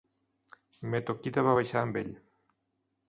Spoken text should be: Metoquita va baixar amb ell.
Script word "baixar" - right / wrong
right